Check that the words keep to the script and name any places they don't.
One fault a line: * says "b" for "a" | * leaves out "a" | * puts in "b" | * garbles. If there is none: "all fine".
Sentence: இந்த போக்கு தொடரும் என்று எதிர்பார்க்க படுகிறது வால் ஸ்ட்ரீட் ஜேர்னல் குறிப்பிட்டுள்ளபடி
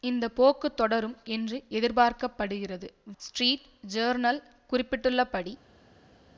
* leaves out "வால்"